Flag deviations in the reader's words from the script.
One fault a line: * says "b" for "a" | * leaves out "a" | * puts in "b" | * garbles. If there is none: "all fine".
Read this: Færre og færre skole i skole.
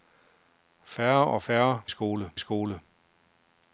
all fine